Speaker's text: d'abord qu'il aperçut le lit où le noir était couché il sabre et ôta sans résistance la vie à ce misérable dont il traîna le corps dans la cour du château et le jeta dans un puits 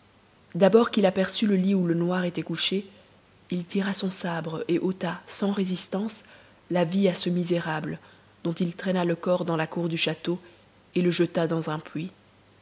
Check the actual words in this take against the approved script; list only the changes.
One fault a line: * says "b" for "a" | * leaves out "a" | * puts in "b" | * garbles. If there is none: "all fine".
* puts in "tira son"